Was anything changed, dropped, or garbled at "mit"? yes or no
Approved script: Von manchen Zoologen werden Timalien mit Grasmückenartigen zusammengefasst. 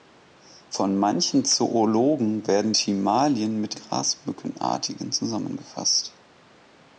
no